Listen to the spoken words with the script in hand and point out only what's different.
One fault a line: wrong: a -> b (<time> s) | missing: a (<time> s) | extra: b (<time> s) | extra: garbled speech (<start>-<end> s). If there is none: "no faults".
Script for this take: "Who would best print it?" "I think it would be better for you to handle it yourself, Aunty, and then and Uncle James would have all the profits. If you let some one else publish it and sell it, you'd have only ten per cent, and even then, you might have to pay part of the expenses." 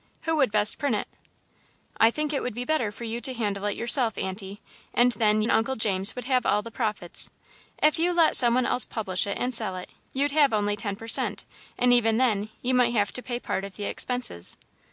no faults